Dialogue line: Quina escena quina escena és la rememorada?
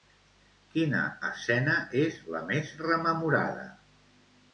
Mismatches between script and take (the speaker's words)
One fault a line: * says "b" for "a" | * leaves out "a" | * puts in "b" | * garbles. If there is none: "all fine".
* leaves out "quina escena"
* puts in "més"